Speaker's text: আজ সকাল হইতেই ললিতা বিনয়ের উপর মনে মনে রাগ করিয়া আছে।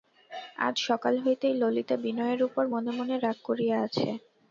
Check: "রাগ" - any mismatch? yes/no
no